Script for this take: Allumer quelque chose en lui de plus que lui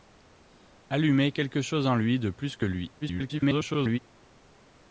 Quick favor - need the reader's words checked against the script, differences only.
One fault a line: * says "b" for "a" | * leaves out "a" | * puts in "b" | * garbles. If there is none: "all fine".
* garbles